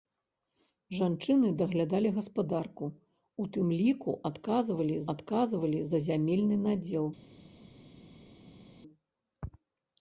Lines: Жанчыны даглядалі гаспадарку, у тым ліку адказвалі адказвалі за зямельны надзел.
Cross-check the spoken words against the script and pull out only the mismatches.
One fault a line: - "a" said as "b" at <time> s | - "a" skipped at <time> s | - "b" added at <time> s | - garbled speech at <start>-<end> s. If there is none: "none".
none